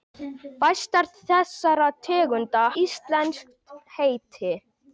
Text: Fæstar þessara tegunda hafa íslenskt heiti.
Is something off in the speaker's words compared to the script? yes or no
yes